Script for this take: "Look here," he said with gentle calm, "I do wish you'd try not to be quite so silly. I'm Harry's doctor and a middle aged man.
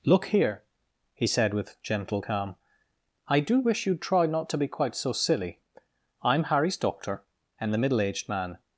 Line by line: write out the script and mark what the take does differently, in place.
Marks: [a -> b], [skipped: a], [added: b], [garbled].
"Look here," he said with gentle calm, "I do wish you'd try not to be quite so silly. I'm Harry's doctor and [a -> the] middle aged man.